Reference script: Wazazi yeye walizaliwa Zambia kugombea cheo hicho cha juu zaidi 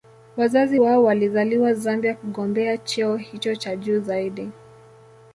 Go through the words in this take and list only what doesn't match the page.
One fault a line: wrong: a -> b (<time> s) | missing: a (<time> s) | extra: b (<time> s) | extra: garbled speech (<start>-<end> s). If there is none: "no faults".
wrong: yeye -> wao (0.7 s)